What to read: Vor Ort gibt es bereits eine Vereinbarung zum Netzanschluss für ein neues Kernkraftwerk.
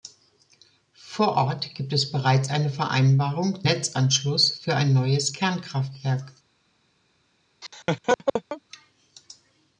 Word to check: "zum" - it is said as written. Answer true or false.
false